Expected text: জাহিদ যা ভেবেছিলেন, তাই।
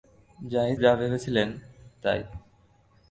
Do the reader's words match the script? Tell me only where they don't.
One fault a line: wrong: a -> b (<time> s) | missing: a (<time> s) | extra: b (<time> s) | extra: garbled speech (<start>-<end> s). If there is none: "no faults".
no faults